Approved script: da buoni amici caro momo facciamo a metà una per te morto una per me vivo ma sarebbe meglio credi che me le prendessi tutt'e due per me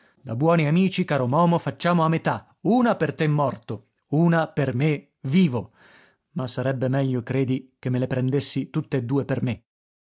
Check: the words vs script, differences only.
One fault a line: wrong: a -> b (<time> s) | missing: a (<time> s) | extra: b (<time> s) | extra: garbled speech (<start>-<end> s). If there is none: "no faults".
no faults